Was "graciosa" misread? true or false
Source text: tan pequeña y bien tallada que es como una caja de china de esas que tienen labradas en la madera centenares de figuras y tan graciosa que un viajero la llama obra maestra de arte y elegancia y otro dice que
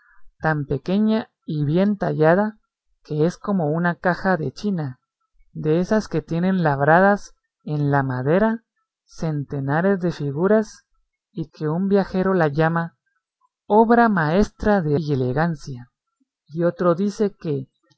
true